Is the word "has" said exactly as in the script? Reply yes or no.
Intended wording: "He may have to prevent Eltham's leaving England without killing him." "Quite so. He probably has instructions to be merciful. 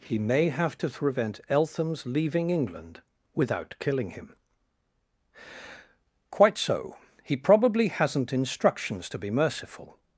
no